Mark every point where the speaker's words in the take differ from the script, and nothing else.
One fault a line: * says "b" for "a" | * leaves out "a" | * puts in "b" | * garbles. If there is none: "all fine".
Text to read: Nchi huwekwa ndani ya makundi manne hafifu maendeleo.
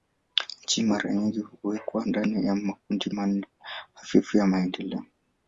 * puts in "mara nyingi"
* puts in "ya"